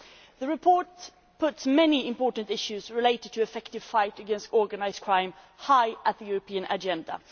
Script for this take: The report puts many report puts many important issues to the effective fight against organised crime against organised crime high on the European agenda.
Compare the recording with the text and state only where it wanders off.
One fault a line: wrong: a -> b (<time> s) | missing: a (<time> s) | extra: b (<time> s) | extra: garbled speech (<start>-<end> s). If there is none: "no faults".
missing: report puts many (2.1 s)
extra: related (2.9 s)
missing: against organised crime (5.3 s)